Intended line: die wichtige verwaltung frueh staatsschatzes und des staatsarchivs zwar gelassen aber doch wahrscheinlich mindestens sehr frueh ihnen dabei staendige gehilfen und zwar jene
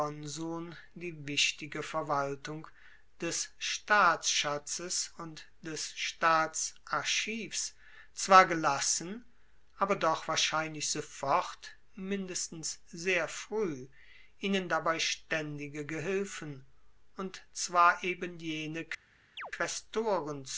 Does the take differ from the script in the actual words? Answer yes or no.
yes